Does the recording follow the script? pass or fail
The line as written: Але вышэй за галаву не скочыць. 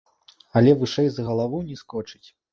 pass